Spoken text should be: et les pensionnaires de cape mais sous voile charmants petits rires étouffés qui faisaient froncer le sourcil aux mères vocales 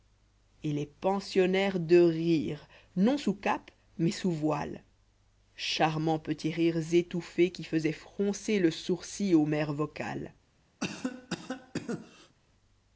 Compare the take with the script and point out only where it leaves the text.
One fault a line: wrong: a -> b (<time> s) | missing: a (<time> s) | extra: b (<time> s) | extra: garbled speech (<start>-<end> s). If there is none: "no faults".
extra: rire non sous (2.0 s)